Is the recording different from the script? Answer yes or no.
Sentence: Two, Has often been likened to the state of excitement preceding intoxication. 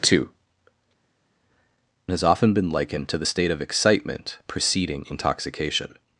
no